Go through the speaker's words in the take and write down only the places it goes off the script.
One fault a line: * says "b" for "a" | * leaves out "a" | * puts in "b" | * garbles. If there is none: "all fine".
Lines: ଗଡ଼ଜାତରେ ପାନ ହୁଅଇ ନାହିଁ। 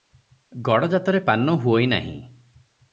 all fine